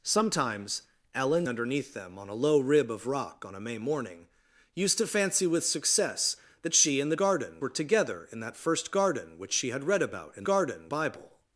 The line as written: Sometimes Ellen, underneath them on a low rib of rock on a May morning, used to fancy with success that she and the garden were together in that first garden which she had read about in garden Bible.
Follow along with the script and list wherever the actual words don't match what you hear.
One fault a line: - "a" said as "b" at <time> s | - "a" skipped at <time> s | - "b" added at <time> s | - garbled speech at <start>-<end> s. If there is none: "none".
none